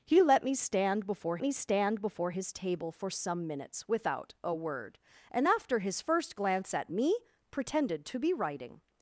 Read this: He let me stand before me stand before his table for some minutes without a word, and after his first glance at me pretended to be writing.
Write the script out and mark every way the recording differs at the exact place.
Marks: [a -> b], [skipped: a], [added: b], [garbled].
He let me stand before me stand before his table for some minutes without a word, and after his first glance at me pretended to be writing.